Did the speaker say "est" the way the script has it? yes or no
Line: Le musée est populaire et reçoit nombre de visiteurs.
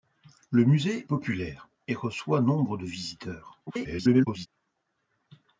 no